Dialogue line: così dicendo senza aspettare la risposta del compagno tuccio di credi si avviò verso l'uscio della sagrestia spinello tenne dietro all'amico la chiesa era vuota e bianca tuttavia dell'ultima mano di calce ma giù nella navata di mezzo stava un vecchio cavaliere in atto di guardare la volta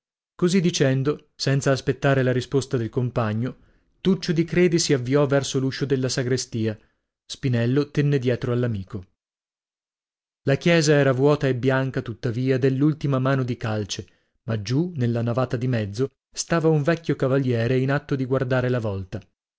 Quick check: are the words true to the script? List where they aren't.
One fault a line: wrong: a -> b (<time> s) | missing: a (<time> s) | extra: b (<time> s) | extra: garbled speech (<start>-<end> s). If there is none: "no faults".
no faults